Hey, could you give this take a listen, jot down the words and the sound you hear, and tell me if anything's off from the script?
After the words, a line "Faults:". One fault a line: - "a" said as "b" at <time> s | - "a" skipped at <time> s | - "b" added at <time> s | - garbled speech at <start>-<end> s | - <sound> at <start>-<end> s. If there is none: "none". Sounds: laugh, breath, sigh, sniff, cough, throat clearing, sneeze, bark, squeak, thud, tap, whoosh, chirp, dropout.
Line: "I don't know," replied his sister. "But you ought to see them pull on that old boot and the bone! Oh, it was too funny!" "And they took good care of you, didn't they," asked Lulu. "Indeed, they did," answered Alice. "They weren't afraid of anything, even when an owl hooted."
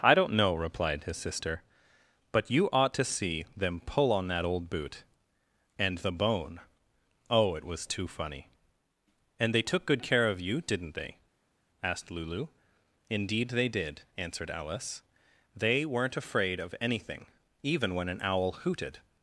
"I don't know," replied his sister. "But you ought to see them pull on that old boot and the bone! Oh, it was too funny!" "And they took good care of you, didn't they," asked Lulu. "Indeed, they did," answered Alice. "They weren't afraid of anything, even when an owl hooted."
Faults:
none